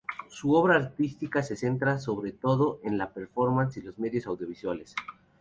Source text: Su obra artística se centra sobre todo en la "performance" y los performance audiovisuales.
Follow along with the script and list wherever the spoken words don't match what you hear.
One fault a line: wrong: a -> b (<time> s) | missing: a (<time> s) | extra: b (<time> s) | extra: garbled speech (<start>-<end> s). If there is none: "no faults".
wrong: performance -> medios (4.0 s)